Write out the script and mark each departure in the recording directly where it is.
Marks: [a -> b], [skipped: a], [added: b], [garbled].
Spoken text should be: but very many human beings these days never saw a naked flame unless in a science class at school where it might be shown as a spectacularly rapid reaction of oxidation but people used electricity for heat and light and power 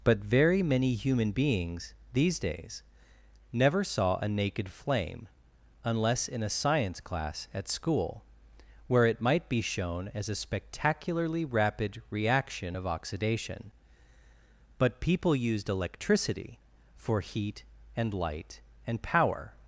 but very many human beings these days never saw a naked flame unless in a science class at school where it might be shown as a spectacularly rapid reaction of oxidation but people used electricity for heat and light and power